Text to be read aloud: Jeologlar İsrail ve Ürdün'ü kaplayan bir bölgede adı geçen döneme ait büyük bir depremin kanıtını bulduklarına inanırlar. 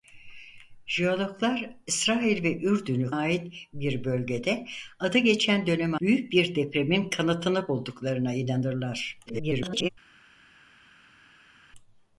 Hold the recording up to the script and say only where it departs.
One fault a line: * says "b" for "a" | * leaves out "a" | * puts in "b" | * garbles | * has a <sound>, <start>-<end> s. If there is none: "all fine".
* says "ait" for "kaplayan"
* leaves out "ait"
* garbles